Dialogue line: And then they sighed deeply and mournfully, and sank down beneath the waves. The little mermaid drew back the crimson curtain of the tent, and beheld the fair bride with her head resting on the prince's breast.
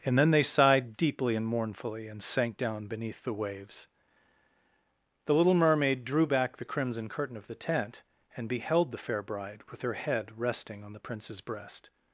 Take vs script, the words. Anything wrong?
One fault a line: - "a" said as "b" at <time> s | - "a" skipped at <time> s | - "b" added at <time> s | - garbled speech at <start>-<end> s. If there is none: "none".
none